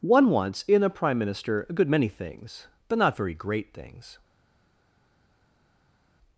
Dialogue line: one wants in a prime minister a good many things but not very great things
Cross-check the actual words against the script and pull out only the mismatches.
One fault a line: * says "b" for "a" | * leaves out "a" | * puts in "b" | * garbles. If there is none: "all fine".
all fine